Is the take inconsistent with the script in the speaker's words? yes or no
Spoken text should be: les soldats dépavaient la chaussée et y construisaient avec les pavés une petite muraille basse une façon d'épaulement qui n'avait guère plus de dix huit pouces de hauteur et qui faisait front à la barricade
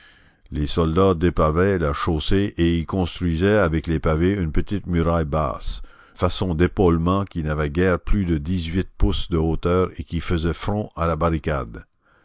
yes